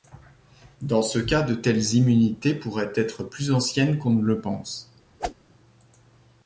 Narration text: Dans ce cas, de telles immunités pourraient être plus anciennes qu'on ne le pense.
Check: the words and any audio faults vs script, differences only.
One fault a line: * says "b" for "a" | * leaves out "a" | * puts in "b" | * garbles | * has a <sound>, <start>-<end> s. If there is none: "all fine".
* has a whoosh, 5.2-5.3 s